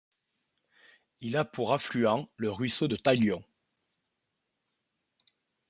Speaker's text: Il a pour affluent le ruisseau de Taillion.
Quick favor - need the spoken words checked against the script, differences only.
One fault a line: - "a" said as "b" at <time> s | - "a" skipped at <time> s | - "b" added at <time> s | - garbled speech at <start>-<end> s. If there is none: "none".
none